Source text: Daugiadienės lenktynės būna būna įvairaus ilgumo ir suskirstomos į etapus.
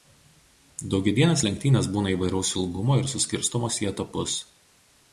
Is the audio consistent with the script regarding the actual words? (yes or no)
no